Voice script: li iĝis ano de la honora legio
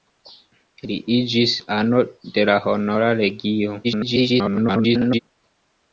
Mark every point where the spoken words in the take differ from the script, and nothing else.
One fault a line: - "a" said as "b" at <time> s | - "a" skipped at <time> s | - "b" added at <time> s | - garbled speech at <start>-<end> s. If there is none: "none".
- garbled speech at 3.8-5.2 s